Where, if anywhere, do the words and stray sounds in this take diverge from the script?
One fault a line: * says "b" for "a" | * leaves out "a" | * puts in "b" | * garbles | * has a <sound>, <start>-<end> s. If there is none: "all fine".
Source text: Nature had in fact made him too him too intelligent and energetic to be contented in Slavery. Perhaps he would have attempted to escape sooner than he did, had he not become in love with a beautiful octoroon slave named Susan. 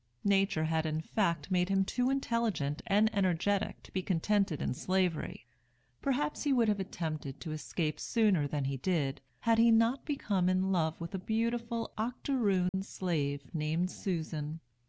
* leaves out "him too"
* has a dropout, 12.7-12.7 s